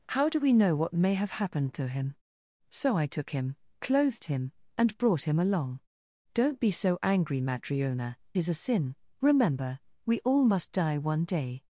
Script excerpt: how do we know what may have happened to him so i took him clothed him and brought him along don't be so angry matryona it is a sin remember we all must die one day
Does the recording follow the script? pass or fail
fail